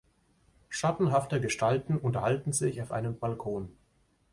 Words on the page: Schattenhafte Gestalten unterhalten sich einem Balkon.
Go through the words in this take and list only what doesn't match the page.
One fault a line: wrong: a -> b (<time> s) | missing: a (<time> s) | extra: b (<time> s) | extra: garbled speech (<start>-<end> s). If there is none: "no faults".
extra: auf (2.8 s)